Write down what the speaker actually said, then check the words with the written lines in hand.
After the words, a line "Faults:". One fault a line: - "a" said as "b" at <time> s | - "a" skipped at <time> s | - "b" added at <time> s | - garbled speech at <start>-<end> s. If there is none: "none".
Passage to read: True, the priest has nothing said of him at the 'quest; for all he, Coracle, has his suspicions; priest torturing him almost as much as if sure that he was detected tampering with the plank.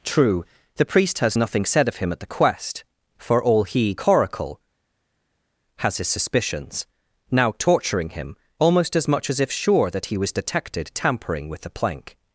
True, the priest has nothing said of him at the 'quest; for all he, Coracle, has his suspicions; now torturing him almost as much as if sure that he was detected tampering with the plank.
Faults:
- "priest" said as "now" at 7.3 s